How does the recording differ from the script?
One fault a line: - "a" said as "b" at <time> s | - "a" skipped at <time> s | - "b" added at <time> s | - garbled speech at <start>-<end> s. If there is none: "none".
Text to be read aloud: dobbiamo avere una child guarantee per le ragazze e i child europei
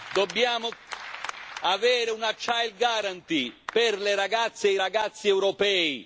- "child" said as "ragazzi" at 4.7 s